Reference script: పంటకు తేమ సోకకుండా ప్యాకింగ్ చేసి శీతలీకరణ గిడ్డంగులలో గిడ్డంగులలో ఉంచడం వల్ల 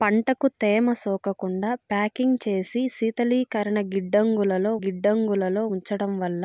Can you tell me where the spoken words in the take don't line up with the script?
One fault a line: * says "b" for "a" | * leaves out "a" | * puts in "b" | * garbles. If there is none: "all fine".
all fine